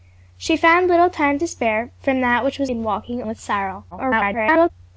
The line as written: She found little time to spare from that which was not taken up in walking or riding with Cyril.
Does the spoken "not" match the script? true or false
false